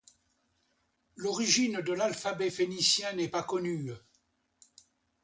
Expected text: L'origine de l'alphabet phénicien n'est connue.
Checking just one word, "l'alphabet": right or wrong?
right